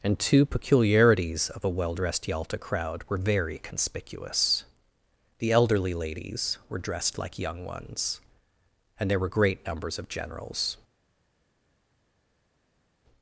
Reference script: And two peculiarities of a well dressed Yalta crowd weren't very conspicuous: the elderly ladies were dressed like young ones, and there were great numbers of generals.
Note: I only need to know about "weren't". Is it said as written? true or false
false